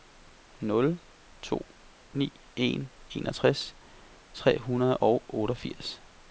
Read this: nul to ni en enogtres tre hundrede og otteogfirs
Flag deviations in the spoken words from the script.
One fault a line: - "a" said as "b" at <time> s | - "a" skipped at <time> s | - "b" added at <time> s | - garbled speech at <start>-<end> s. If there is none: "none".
none